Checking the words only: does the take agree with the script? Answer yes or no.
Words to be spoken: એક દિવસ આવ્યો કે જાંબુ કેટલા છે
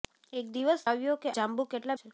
yes